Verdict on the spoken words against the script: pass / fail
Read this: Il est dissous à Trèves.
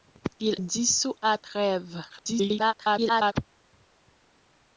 fail